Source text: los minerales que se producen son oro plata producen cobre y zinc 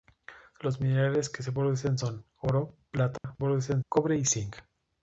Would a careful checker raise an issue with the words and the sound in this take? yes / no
yes